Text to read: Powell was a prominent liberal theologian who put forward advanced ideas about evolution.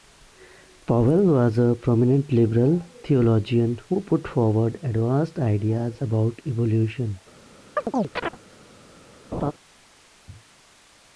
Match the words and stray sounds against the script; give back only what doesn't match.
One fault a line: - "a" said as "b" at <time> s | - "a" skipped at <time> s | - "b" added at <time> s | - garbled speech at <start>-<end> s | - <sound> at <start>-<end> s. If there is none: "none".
- chirp at 7.8-8.4 s
- laugh at 9.3-9.5 s